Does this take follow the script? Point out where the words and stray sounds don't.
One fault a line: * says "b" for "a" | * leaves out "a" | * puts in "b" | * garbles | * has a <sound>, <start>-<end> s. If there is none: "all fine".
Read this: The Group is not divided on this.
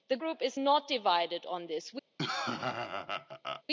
* has a laugh, 2.2-3.6 s